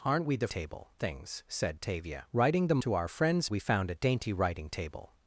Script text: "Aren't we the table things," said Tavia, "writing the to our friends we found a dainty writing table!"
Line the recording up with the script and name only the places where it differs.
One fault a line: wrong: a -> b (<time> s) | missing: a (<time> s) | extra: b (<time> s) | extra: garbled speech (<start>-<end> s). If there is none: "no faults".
no faults